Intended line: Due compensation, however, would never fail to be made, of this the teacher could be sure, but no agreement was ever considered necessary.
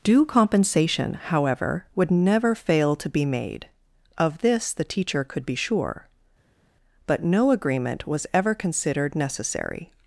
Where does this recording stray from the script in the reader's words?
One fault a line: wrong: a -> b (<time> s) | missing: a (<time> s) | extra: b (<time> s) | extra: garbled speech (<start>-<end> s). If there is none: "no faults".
no faults